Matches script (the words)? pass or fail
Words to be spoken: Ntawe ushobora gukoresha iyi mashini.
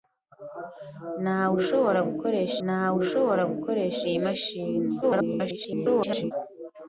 fail